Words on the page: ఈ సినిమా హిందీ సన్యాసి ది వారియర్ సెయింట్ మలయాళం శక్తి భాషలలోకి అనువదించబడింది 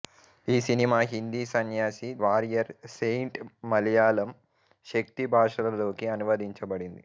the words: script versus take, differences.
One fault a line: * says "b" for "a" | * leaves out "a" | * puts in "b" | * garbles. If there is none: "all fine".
* leaves out "ది"